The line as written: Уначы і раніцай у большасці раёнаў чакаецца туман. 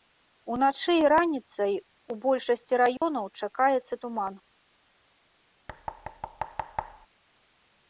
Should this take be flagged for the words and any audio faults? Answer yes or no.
yes